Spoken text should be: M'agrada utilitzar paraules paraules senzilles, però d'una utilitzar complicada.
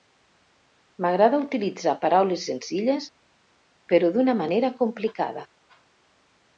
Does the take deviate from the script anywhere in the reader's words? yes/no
yes